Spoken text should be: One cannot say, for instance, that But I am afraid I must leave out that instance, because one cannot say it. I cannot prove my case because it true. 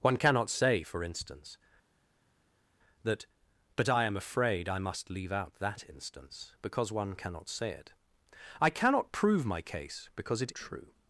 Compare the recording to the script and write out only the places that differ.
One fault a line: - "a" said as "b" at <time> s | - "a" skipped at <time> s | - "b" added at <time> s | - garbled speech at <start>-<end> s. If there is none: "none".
none